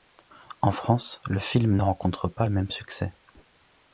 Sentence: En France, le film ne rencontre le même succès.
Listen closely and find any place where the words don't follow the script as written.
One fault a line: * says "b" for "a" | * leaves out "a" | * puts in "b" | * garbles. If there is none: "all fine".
* puts in "pas"